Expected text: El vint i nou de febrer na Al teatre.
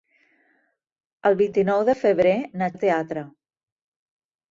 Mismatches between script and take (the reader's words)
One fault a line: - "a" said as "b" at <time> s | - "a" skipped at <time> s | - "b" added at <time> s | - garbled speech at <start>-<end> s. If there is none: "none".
none